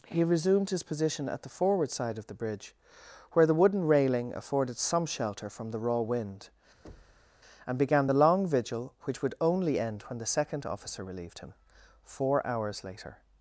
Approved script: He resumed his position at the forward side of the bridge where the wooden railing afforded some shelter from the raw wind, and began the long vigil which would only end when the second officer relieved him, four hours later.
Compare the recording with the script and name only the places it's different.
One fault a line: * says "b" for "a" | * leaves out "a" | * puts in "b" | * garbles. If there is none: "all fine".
all fine